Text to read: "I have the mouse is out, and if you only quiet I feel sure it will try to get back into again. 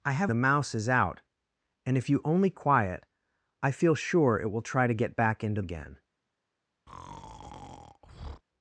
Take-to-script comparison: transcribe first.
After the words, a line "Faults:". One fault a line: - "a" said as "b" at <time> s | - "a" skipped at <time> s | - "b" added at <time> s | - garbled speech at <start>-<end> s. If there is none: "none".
"I have the mouse is out, and if you only quiet I feel sure it will try to get back into again.
Faults:
none